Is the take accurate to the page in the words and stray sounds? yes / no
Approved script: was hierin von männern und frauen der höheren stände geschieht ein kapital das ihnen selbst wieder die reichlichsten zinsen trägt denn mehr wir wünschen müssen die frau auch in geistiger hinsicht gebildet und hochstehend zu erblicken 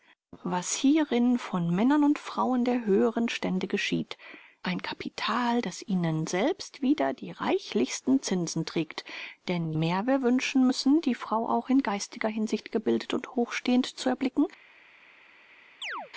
no